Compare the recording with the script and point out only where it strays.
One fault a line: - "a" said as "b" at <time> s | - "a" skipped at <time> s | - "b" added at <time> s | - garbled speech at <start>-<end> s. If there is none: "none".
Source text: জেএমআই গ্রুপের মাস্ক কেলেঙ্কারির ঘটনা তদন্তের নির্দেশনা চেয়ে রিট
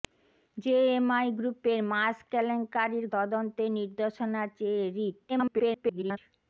- "ঘটনা" skipped at 3.0 s
- garbled speech at 5.3-6.2 s